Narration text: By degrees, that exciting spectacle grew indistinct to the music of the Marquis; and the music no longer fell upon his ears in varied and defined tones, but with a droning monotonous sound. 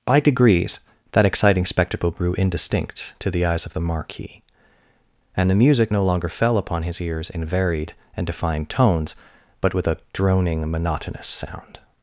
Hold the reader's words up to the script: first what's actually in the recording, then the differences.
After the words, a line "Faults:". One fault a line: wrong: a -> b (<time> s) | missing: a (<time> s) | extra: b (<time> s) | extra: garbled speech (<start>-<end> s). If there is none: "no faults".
By degrees, that exciting spectacle grew indistinct to the eyes of the Marquis; and the music no longer fell upon his ears in varied and defined tones, but with a droning monotonous sound.
Faults:
wrong: music -> eyes (3.5 s)